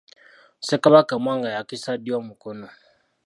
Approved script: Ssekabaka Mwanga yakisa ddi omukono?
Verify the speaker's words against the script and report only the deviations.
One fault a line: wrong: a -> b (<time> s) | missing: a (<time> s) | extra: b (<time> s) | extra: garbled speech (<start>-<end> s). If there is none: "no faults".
no faults